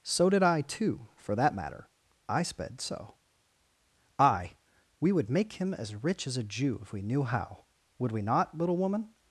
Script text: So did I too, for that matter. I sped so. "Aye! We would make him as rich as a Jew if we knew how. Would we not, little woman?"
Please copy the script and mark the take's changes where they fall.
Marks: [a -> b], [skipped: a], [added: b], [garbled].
So did I too, for that matter. I sped so. "Aye! We would make him as rich as a Jew if we knew how. Would we not, little woman?"